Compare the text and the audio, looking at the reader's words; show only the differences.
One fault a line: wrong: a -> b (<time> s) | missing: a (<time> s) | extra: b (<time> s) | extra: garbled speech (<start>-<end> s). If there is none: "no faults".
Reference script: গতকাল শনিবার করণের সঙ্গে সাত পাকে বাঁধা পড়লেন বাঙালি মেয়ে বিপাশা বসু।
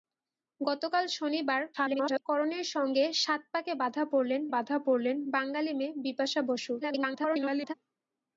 extra: garbled speech (1.7-2.2 s)
extra: বাঁধা পড়লেন (4.5 s)
extra: garbled speech (6.8-7.7 s)